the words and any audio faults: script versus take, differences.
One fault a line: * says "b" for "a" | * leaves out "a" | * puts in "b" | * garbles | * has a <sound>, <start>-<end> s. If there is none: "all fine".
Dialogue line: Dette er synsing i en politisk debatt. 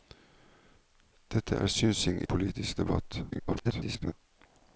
* leaves out "en"
* garbles